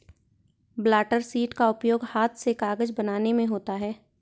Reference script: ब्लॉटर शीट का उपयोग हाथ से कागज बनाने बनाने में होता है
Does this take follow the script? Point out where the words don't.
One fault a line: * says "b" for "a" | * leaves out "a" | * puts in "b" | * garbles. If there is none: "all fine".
* leaves out "बनाने"